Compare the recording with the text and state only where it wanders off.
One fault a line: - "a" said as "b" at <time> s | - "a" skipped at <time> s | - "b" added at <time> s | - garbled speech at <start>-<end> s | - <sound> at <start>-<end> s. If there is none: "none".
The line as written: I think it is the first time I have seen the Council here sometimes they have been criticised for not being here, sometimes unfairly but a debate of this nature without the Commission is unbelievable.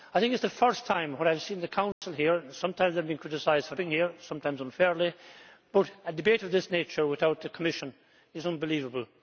- dropout at 1.9-2.0 s
- "not" skipped at 3.8 s